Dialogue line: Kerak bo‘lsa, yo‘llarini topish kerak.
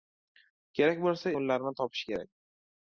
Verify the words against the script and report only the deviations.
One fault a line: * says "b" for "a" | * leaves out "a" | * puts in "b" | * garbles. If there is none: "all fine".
all fine